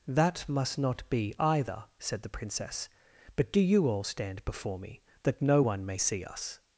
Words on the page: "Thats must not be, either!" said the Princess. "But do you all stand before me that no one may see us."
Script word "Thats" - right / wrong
wrong